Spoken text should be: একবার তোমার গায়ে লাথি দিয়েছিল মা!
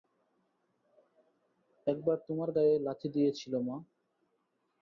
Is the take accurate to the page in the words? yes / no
yes